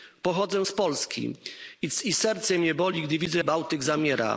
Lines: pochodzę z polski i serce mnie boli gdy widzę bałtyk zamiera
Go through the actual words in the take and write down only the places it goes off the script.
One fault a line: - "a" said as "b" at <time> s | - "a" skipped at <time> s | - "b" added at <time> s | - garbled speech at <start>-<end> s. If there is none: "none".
none